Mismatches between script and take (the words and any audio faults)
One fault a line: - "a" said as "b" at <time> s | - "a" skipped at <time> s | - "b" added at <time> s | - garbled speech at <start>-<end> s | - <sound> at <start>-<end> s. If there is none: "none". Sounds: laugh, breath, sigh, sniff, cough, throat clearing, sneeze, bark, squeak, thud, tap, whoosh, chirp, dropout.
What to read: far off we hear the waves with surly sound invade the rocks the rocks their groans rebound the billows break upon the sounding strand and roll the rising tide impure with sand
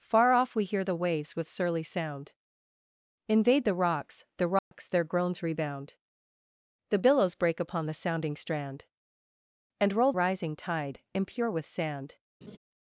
- dropout at 4.6-4.7 s
- "the" skipped at 10.1 s
- laugh at 12.4-12.6 s